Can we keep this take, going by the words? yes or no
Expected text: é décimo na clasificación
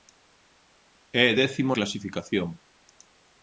no